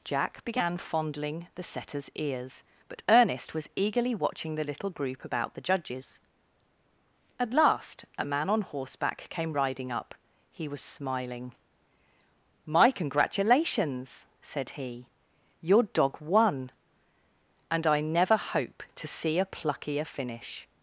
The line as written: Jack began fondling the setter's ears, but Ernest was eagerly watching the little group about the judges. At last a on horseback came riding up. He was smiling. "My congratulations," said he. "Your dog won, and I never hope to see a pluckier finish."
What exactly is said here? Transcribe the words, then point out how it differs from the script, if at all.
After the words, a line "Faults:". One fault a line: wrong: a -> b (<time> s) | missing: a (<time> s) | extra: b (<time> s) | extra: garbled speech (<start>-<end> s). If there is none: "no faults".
Jack began fondling the setter's ears, but Ernest was eagerly watching the little group about the judges. At last a man on horseback came riding up. He was smiling. "My congratulations," said he. "Your dog won, and I never hope to see a pluckier finish."
Faults:
extra: man (8.2 s)